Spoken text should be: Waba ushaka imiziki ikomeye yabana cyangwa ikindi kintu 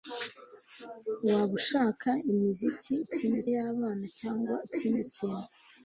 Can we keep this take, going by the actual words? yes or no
no